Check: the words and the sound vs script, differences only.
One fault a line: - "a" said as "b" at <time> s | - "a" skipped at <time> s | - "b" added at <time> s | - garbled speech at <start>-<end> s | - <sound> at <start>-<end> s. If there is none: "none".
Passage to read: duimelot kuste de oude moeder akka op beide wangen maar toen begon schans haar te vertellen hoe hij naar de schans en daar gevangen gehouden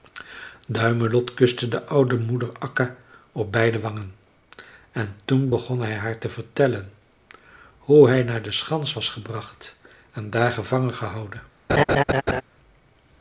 - "maar" said as "en" at 4.9 s
- "schans" said as "hij" at 5.8 s
- "was gebracht" added at 8.9 s
- laugh at 11.7-12.4 s